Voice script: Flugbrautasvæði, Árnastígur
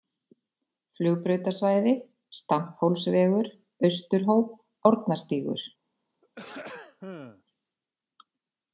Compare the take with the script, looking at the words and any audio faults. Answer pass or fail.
fail